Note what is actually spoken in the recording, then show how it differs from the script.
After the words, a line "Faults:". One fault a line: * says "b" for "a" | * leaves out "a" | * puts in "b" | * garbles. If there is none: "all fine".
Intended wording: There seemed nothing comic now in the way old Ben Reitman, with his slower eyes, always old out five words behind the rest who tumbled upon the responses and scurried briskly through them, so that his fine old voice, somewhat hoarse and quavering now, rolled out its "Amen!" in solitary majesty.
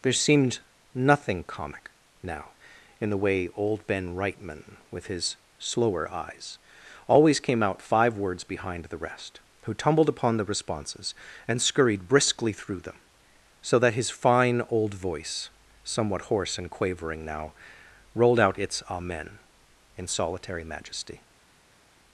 There seemed nothing comic now in the way old Ben Reitman, with his slower eyes, always came out five words behind the rest who tumbled upon the responses and scurried briskly through them, so that his fine old voice, somewhat hoarse and quavering now, rolled out its "Amen!" in solitary majesty.
Faults:
* says "came" for "old"